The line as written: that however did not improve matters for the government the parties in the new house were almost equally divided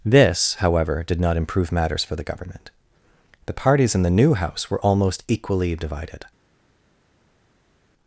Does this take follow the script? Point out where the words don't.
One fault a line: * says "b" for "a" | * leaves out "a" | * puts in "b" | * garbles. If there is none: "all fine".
* says "this" for "that"